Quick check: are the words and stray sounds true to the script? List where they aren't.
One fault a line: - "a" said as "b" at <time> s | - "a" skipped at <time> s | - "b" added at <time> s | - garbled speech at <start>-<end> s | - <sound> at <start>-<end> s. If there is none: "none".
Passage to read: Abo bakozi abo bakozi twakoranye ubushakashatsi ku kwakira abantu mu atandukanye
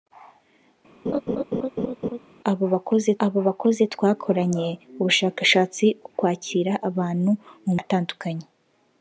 - laugh at 1.1-2.2 s